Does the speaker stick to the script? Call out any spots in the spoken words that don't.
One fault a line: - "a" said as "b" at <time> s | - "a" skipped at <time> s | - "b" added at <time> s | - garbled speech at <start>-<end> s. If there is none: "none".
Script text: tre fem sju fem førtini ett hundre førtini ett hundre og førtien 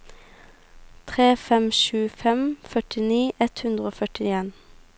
- "førtini ett hundre" skipped at 3.9 s